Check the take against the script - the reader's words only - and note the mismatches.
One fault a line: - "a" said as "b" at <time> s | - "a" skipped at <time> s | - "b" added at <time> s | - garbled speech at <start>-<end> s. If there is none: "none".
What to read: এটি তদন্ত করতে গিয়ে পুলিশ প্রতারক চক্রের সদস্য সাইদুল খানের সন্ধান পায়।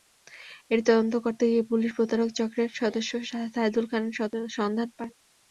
none